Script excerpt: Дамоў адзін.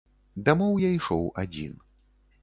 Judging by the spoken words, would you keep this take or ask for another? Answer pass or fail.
fail